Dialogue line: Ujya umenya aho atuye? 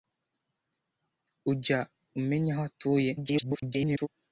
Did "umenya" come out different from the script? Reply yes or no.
no